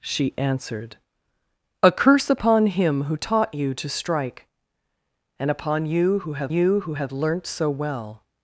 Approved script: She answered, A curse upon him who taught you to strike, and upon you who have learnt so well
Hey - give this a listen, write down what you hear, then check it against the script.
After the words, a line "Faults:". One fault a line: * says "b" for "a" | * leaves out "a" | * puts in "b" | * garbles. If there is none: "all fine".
She answered, A curse upon him who taught you to strike, and upon you who have you who have learnt so well
Faults:
* puts in "you who have"